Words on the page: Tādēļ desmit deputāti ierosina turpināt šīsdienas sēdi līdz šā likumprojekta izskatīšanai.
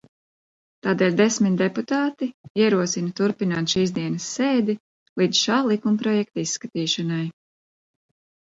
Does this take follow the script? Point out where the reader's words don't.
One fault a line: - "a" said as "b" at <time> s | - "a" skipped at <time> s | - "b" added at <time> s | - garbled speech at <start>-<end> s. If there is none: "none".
none